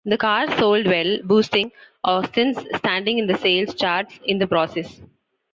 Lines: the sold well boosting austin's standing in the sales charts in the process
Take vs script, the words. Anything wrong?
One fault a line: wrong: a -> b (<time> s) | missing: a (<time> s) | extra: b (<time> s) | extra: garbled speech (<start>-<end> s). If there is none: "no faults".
extra: car (0.2 s)